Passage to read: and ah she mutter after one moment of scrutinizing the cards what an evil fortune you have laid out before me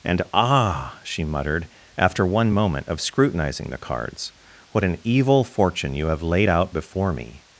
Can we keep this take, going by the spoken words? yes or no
no